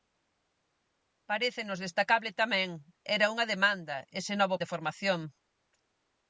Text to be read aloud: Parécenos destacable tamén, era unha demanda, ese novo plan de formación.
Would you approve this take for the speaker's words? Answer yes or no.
no